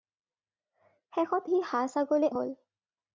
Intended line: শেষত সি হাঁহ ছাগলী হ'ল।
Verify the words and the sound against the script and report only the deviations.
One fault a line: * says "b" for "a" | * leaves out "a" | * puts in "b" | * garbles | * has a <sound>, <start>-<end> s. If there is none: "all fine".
all fine